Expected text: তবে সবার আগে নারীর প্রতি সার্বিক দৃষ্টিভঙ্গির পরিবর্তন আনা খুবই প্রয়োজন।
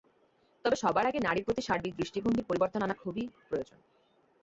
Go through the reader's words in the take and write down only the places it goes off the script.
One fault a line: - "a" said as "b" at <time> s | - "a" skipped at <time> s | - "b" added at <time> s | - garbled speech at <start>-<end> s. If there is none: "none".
none